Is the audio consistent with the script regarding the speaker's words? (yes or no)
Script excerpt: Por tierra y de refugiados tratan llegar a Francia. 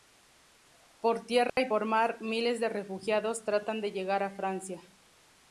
no